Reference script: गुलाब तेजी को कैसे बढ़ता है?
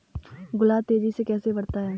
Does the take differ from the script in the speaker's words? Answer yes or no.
yes